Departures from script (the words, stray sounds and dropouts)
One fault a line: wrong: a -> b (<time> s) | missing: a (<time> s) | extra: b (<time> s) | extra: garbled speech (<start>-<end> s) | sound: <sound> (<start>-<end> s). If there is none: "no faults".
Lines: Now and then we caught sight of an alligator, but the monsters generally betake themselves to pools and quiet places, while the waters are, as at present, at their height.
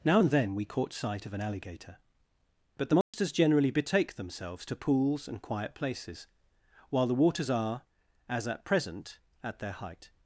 sound: dropout (3.0-3.1 s)